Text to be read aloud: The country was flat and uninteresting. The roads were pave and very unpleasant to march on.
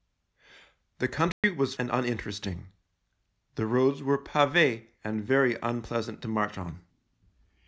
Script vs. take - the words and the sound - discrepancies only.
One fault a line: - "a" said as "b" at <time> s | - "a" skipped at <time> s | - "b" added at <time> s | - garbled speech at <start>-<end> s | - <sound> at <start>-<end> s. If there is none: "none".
- dropout at 1.3-1.4 s
- "flat" skipped at 1.8 s